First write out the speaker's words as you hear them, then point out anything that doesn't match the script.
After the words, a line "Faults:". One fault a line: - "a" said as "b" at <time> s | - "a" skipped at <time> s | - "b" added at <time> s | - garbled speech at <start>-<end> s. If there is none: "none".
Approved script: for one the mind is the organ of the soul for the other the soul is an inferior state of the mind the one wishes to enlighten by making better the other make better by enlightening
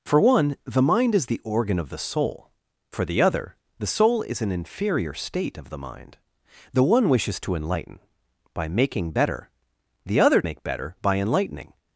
for one the mind is the organ of the soul for the other the soul is an inferior state of the mind the one wishes to enlighten by making better the other make better by enlightening
Faults:
none